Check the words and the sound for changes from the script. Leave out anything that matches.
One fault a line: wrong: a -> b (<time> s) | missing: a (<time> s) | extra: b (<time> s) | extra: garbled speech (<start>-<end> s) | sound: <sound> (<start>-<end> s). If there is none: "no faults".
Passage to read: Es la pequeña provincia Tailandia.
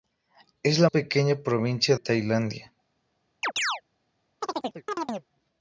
sound: chirp (3.4-3.8 s)
sound: chirp (4.4-5.3 s)